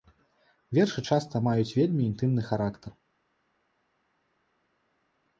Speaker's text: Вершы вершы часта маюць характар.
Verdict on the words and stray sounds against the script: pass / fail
fail